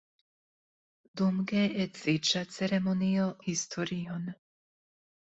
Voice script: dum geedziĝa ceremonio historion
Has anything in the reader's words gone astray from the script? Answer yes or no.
no